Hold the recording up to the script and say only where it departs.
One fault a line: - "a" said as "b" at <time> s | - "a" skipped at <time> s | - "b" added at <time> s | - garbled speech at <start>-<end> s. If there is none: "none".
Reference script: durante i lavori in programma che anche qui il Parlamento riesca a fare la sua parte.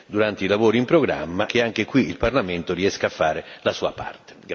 none